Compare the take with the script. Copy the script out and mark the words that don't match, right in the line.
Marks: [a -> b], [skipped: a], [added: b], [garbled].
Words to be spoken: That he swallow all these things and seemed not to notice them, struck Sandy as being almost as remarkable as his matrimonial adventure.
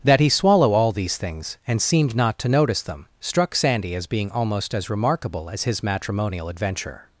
That he swallow all these things and seemed not to notice them, struck Sandy as being almost as remarkable as his matrimonial adventure.